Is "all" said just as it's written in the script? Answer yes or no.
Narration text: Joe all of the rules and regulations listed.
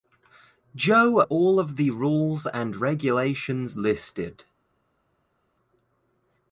yes